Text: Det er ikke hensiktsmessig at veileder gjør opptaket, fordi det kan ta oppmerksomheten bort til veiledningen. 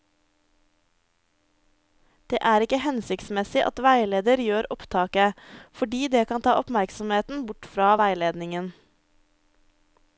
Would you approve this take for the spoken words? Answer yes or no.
no